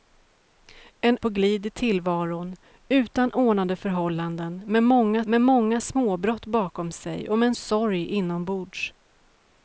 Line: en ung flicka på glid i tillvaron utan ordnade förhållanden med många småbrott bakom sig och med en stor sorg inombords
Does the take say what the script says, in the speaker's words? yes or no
no